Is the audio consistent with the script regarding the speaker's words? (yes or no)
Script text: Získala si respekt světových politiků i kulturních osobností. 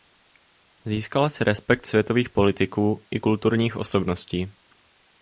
yes